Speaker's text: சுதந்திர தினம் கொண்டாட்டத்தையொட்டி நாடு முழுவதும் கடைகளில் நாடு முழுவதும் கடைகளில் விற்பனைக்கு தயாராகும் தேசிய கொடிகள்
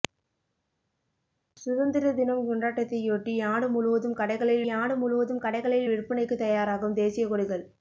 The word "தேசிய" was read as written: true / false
true